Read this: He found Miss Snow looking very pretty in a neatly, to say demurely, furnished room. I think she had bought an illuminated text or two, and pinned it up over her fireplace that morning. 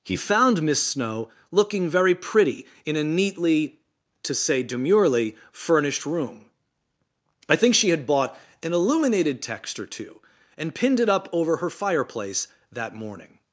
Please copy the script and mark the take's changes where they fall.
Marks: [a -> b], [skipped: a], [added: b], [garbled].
He found Miss Snow looking very pretty in a neatly, to say demurely, furnished room. I think she had bought an illuminated text or two, and pinned it up over her fireplace that morning.